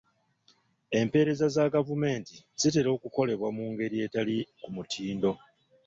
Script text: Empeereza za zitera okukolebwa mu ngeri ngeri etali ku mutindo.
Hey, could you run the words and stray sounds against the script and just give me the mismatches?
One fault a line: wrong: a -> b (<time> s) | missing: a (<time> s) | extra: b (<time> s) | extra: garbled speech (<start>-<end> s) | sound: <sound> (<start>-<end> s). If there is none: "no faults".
extra: gavumenti (1.8 s)
missing: ngeri (4.0 s)